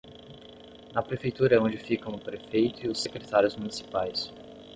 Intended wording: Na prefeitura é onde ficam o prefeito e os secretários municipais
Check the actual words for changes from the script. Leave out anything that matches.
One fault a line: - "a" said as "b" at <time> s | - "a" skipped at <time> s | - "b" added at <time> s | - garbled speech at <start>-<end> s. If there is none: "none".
none